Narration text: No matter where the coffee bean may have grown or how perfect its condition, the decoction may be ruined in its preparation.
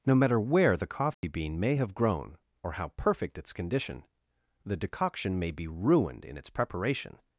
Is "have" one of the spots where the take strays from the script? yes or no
no